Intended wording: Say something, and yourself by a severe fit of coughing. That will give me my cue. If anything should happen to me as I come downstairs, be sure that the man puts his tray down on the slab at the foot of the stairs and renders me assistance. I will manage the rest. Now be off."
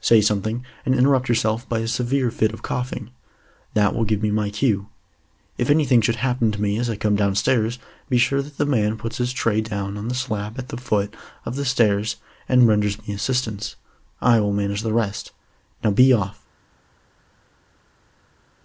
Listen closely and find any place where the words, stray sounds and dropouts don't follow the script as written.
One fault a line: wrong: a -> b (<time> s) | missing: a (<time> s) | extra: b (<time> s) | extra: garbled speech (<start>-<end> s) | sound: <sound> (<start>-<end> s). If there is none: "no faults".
extra: interrupt (0.9 s)